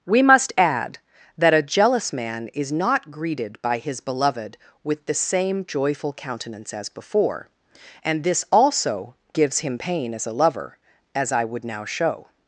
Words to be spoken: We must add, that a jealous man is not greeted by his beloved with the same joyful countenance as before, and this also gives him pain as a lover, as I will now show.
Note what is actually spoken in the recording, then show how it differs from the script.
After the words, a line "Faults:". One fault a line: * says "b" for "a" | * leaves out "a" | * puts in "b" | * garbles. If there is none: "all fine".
We must add, that a jealous man is not greeted by his beloved with the same joyful countenance as before, and this also gives him pain as a lover, as I would now show.
Faults:
* says "would" for "will"